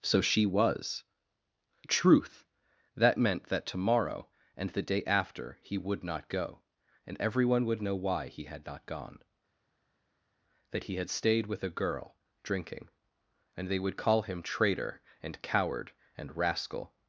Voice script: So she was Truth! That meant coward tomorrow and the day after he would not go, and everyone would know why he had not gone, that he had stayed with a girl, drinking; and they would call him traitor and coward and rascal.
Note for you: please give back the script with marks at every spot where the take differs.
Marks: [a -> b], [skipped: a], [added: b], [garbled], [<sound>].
So she was Truth! That meant [coward -> that] tomorrow and the day after he would not go, and everyone would know why he had not gone, that he had stayed with a girl, drinking; and they would call him traitor and coward and rascal.